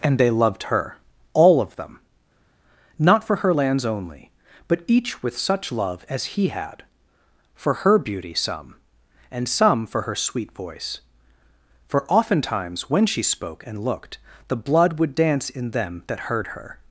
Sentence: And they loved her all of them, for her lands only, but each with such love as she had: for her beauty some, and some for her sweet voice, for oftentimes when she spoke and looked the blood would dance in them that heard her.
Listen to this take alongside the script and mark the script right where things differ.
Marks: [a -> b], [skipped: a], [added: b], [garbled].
And they loved her all of them, [added: not] for her lands only, but each with such love as [she -> he] had: for her beauty some, and some for her sweet voice, for oftentimes when she spoke and looked the blood would dance in them that heard her.